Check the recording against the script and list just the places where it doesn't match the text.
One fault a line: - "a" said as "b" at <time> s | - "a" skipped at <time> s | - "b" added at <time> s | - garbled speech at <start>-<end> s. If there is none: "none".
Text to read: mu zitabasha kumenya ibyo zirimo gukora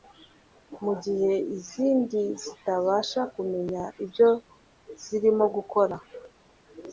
- "gihe izindi" added at 1.0 s